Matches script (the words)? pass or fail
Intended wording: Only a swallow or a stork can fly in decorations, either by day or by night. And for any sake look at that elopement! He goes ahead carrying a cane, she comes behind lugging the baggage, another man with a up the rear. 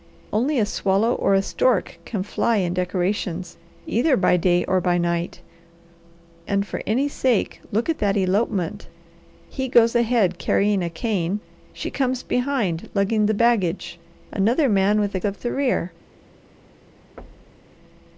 pass